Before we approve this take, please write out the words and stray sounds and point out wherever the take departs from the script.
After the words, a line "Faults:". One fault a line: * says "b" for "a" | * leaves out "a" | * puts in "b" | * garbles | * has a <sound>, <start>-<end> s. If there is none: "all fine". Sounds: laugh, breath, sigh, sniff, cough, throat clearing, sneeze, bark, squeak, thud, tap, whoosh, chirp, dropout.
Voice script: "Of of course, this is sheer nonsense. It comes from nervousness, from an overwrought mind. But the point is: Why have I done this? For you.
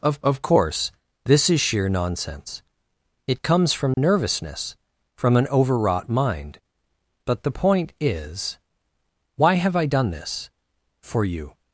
"Of of course, this is sheer nonsense. It comes from nervousness, from an overwrought mind. But the point is: Why have I done this? For you.
Faults:
* has a dropout, 3.9-4.0 s